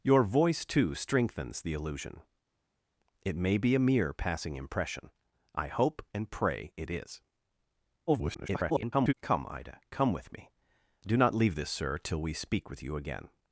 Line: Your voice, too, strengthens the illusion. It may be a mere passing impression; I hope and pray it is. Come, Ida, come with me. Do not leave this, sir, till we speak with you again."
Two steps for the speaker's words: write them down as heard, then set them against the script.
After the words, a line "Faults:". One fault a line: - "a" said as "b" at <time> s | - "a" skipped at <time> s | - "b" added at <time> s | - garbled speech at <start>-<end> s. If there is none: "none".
Your voice, too, strengthens the illusion. It may be a mere passing impression; I hope and pray it is. [garbled] Come, Ida, come with me. Do not leave this, sir, till we speak with you again."
Faults:
- garbled speech at 8.1-9.1 s